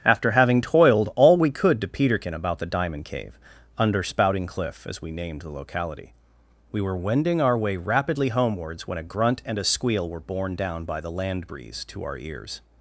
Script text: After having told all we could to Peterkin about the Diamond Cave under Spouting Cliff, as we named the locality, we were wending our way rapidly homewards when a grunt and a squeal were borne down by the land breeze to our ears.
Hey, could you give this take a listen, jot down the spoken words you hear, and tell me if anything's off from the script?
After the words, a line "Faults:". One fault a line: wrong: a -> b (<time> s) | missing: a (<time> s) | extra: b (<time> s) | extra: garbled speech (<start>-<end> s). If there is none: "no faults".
After having toiled all we could to Peterkin about the Diamond Cave under Spouting Cliff, as we named the locality, we were wending our way rapidly homewards when a grunt and a squeal were borne down by the land breeze to our ears.
Faults:
wrong: told -> toiled (0.6 s)